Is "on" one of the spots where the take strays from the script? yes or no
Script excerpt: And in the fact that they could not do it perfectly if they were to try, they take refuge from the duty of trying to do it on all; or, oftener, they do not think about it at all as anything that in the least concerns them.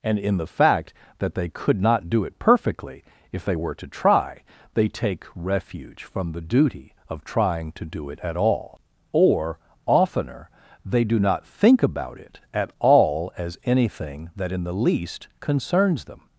yes